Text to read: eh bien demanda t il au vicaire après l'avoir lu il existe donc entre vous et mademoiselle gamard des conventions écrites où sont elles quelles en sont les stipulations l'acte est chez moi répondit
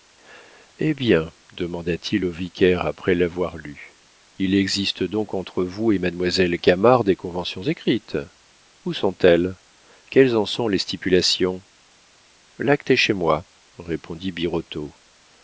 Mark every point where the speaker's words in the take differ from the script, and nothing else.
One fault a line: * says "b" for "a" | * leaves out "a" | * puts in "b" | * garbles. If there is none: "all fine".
all fine